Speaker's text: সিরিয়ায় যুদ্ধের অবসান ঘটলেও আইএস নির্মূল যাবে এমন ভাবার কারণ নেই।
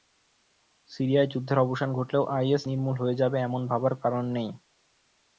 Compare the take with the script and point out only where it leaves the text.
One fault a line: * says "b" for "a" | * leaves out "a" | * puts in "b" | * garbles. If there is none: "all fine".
* puts in "হয়ে"